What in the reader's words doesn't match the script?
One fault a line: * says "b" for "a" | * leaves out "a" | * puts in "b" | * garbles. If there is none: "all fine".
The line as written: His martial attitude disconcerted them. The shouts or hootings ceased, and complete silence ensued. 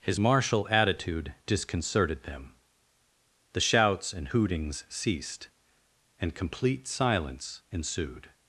* says "and" for "or"